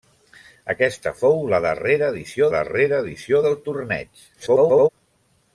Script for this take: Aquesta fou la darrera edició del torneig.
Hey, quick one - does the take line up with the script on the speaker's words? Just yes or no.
no